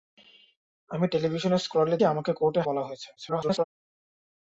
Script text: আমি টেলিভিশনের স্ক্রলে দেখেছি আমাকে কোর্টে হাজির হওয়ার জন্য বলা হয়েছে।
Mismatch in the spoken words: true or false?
true